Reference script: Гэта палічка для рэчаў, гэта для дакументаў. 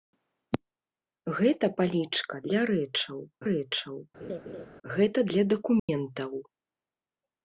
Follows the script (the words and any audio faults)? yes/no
no